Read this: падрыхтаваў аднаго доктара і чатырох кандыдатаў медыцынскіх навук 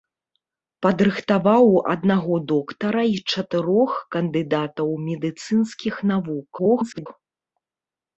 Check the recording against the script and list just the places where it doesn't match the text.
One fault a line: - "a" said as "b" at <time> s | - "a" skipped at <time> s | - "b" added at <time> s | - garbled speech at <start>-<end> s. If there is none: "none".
- garbled speech at 6.6-7.1 s